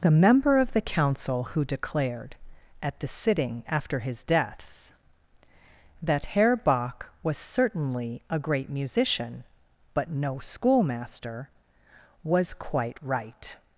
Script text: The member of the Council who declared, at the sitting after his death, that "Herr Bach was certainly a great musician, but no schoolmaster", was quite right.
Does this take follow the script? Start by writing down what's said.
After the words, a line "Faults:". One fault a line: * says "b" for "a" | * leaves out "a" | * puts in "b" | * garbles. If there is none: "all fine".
The member of the Council who declared, at the sitting after his deaths, that "Herr Bach was certainly a great musician, but no schoolmaster", was quite right.
Faults:
* says "deaths" for "death"